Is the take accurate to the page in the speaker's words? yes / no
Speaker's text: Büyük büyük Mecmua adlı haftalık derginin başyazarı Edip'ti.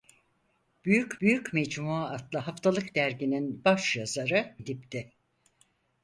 yes